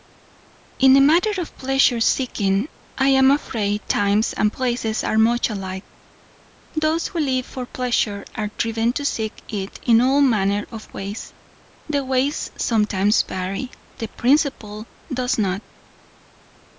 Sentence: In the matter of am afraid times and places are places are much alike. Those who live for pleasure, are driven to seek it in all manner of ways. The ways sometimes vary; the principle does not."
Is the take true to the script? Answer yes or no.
no